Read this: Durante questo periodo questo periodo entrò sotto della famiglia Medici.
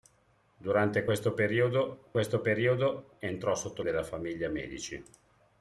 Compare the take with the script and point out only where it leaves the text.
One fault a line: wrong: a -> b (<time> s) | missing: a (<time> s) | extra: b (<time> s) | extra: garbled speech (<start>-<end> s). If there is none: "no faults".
no faults